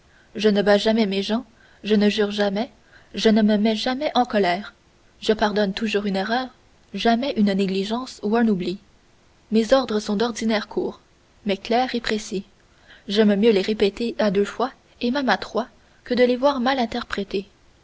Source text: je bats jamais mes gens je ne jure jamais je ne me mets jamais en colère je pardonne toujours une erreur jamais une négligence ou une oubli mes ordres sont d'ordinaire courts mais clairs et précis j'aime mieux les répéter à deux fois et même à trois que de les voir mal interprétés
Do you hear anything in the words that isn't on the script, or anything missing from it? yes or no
yes